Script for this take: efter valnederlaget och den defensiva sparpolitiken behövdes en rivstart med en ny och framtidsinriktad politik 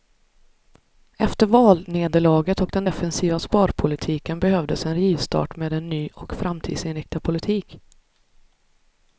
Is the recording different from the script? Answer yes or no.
no